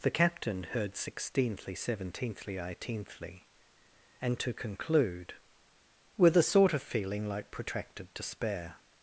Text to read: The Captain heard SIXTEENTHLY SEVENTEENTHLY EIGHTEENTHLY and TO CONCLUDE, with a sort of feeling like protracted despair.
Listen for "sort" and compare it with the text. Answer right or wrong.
right